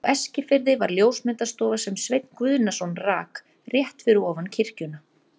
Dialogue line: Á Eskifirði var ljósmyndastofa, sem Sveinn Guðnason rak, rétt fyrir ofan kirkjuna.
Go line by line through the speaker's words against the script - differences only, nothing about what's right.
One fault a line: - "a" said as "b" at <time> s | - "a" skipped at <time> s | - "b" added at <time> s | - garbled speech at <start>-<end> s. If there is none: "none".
none